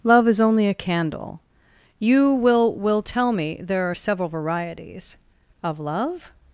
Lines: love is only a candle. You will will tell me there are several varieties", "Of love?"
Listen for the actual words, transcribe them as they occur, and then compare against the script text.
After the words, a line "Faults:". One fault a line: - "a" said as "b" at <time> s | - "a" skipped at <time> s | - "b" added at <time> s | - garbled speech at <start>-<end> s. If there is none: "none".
love is only a candle. You will will tell me there are several varieties", "Of love?"
Faults:
none